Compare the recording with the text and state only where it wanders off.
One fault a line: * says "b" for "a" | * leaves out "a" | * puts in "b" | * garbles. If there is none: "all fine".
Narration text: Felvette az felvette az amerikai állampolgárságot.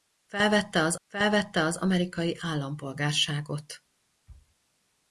all fine